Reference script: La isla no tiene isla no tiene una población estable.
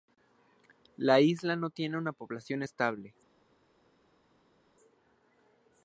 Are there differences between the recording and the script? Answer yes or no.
yes